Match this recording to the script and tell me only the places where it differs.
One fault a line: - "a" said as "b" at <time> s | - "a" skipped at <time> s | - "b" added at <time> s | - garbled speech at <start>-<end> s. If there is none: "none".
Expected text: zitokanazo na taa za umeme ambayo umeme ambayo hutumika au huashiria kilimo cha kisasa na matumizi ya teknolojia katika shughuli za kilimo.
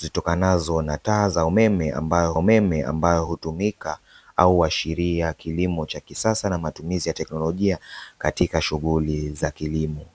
none